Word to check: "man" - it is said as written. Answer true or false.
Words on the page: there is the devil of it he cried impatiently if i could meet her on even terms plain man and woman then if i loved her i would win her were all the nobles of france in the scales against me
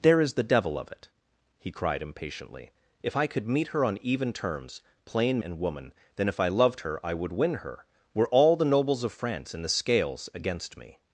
false